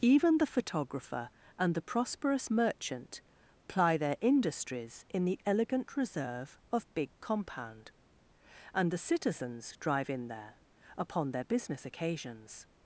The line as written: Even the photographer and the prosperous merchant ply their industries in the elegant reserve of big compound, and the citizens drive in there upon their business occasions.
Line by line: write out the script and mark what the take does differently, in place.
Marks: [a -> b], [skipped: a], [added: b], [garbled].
Even the photographer and the prosperous merchant ply their industries in the elegant reserve of big compound, and the citizens drive in there upon their business occasions.